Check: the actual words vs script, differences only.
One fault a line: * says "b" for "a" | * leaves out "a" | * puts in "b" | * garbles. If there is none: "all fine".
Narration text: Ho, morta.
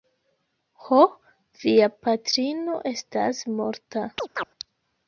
* puts in "via patrino estas"